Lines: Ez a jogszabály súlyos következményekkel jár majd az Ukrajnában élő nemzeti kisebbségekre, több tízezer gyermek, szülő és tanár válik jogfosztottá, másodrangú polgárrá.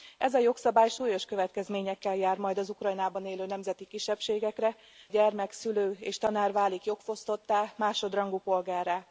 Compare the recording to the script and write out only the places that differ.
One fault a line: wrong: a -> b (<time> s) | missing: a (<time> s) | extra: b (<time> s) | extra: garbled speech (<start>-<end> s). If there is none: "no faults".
missing: több tízezer (4.8 s)